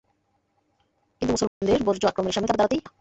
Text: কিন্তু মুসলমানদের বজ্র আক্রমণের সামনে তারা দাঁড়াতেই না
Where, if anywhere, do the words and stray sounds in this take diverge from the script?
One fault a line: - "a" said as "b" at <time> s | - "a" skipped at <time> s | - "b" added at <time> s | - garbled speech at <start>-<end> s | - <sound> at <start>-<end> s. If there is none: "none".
- dropout at 1.5-1.6 s